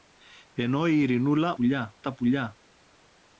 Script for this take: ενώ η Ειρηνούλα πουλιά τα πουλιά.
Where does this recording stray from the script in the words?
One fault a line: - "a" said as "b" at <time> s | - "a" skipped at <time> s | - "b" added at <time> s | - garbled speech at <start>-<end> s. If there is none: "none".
none